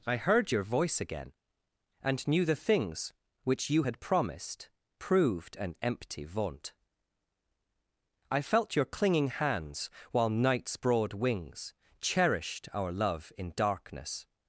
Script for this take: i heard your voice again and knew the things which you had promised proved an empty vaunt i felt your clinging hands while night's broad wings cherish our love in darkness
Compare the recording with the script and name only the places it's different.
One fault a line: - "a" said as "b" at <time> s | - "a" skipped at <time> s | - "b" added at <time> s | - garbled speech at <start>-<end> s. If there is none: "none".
- "cherish" said as "cherished" at 12.0 s